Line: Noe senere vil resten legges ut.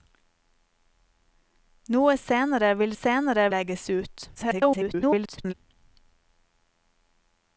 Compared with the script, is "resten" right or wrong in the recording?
wrong